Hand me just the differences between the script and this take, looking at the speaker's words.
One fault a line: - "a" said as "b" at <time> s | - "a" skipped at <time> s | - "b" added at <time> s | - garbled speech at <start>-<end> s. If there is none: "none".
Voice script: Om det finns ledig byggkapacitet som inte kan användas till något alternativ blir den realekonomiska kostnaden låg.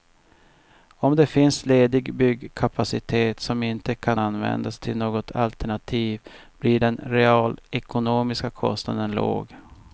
none